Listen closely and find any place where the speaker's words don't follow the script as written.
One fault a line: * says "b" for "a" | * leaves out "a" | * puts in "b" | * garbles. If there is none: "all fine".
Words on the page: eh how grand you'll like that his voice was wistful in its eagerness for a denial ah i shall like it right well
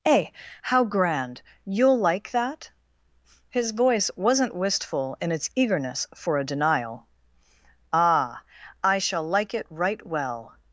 * says "wasn't" for "was"